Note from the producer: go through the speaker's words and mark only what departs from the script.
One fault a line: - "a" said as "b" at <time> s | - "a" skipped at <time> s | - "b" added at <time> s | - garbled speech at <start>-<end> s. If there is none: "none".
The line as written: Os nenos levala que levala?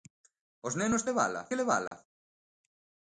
none